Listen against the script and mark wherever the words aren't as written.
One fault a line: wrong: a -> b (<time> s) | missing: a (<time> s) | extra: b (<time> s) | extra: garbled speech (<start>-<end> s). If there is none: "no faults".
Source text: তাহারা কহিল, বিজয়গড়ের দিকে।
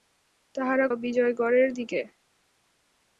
missing: কহিল (0.9 s)